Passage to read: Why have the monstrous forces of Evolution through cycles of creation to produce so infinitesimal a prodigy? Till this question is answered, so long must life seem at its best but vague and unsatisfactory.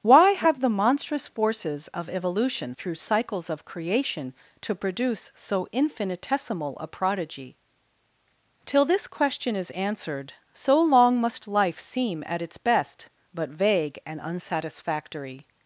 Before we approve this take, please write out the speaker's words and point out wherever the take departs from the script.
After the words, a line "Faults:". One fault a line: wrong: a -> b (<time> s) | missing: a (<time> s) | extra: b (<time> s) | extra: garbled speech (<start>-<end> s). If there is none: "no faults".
Why have the monstrous forces of Evolution through cycles of creation to produce so infinitesimal a prodigy? Till this question is answered, so long must life seem at its best but vague and unsatisfactory.
Faults:
no faults